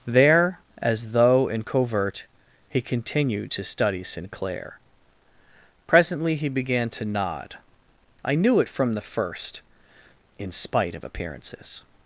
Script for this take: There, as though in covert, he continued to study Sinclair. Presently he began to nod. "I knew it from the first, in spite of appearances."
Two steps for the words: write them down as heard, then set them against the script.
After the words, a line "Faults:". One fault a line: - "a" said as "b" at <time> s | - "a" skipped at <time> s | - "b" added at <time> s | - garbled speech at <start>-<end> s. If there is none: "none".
There, as though in covert, he continued to study Sinclair. Presently he began to nod. "I knew it from the first, in spite of appearances."
Faults:
none